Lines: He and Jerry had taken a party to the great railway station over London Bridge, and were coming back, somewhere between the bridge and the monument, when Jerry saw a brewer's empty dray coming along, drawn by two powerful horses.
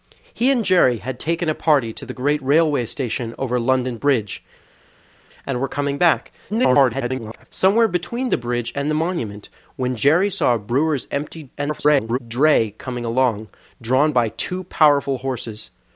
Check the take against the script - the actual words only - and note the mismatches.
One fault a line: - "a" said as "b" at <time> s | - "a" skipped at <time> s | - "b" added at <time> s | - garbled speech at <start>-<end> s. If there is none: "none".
- garbled speech at 6.5-7.5 s
- garbled speech at 11.6-12.2 s